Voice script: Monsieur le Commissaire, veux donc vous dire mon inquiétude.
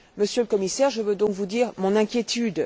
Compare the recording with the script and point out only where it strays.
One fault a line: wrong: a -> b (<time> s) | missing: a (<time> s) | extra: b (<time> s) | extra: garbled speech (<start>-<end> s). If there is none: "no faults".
extra: je (0.9 s)